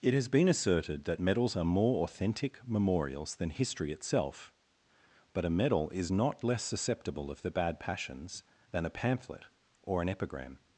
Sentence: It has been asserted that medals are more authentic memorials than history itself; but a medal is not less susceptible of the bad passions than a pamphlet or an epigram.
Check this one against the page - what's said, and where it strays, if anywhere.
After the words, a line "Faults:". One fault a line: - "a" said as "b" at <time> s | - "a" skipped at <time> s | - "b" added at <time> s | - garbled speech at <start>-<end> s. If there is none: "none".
It has been asserted that medals are more authentic memorials than history itself; but a medal is not less susceptible of the bad passions than a pamphlet or an epigram.
Faults:
none